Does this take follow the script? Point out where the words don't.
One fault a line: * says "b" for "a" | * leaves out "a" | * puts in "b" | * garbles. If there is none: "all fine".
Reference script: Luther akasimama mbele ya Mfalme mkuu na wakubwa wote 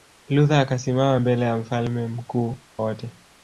* leaves out "na wakubwa"